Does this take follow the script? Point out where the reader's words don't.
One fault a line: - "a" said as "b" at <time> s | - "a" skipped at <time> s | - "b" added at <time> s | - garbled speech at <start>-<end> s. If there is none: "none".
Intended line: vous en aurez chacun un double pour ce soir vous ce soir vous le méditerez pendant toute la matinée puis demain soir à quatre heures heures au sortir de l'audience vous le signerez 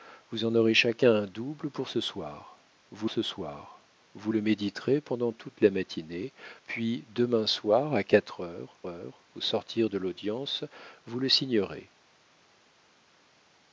none